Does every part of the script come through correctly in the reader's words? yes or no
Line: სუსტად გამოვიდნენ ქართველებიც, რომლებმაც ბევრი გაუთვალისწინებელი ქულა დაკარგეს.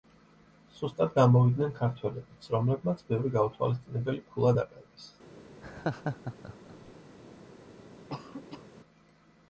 yes